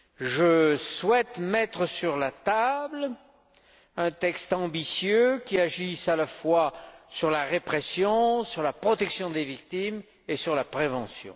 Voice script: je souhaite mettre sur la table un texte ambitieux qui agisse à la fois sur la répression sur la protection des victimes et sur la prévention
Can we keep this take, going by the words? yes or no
yes